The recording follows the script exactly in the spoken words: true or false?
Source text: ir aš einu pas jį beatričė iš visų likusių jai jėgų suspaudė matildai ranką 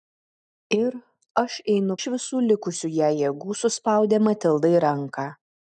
false